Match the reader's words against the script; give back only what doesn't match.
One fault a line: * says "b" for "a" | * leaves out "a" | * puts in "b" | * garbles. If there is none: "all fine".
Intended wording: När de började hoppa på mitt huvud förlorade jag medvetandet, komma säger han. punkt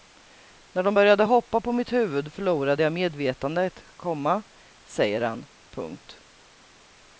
all fine